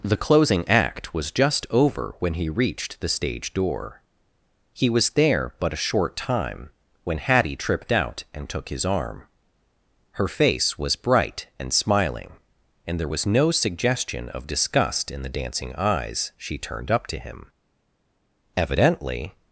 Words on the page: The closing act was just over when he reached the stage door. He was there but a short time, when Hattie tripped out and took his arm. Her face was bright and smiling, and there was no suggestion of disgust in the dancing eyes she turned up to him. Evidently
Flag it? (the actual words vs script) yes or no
no